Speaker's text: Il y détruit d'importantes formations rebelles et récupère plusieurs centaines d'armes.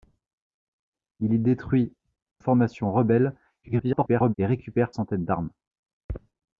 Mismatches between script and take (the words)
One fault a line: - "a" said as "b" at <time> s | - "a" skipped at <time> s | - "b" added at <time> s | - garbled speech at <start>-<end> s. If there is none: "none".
- "d'importantes" skipped at 1.9 s
- garbled speech at 3.6-4.3 s
- "plusieurs" skipped at 4.9 s